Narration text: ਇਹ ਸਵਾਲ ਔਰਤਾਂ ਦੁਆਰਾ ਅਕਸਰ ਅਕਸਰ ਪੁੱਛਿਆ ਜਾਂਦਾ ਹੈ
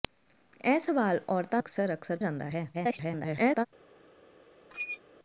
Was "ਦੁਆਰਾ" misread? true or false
true